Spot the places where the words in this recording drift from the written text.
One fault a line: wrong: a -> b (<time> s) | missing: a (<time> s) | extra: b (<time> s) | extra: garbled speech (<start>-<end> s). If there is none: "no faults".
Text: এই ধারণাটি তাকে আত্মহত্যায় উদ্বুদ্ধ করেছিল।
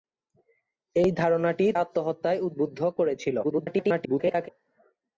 missing: তাকে (1.6 s)
extra: garbled speech (3.4-4.5 s)